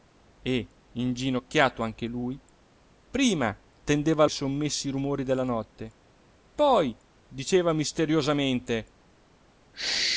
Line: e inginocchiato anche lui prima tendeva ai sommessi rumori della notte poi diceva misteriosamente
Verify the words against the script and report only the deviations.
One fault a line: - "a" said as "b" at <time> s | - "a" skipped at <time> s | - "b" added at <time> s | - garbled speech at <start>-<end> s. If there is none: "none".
none